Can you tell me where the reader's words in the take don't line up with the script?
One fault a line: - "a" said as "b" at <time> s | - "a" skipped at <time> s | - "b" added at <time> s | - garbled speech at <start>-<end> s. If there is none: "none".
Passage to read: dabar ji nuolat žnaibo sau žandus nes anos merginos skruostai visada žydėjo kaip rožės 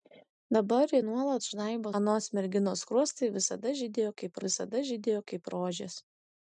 - "sau žandus nes anos merginos skruostai" said as "anos merginos skruostai visada žydėjo kaip" at 2.0 s